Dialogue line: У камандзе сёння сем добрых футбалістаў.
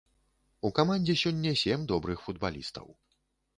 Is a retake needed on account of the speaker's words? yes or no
no